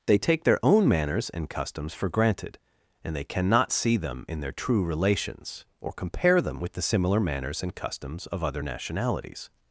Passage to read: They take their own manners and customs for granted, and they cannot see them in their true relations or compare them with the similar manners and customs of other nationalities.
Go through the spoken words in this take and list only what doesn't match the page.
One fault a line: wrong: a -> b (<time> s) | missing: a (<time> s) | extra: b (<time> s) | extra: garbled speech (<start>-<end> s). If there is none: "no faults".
no faults